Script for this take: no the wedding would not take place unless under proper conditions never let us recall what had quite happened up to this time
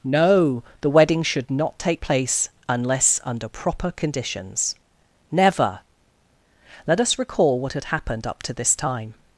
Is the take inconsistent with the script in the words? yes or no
yes